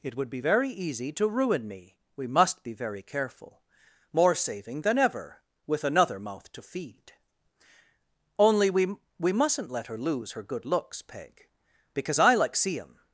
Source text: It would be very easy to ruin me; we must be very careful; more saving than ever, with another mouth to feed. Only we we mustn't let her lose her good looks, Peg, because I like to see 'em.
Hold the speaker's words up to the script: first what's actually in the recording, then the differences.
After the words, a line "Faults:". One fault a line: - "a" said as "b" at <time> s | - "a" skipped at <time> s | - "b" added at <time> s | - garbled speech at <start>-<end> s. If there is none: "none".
It would be very easy to ruin me; we must be very careful; more saving than ever, with another mouth to feed. Only we we mustn't let her lose her good looks, Peg, because I like see 'em.
Faults:
- "to" skipped at 12.6 s